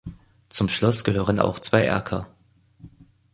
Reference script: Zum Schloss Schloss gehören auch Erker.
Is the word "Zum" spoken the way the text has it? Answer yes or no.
yes